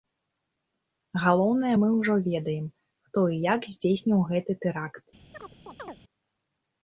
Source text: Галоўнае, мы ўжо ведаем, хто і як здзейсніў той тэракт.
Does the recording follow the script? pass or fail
fail